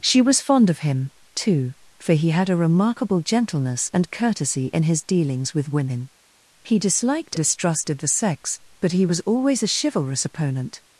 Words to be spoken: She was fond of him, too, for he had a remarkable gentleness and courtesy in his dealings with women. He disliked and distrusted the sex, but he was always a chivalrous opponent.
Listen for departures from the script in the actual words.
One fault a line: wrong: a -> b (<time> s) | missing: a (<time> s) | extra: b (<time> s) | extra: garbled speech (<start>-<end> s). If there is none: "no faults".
missing: and (7.3 s)